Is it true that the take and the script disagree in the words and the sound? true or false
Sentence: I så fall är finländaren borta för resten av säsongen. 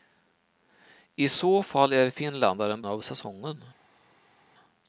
true